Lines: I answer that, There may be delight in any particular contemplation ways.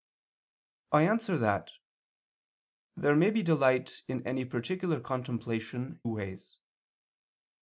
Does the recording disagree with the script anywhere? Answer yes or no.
no